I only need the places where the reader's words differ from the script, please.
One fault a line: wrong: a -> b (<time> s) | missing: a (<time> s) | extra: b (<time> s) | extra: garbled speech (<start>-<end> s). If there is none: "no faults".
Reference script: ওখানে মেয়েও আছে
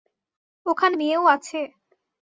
no faults